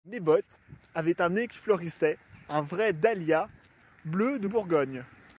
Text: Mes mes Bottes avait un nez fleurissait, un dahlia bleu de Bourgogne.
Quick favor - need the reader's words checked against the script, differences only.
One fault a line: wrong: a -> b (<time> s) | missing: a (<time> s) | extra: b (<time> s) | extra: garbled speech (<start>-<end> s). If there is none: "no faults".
missing: mes (0.2 s)
extra: qui (1.5 s)
extra: vrai (2.6 s)